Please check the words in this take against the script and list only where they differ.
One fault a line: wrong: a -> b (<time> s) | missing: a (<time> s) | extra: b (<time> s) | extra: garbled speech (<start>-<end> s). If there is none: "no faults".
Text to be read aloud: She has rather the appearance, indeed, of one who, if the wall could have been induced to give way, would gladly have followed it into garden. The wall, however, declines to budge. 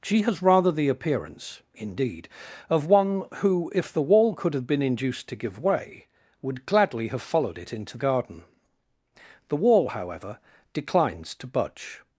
no faults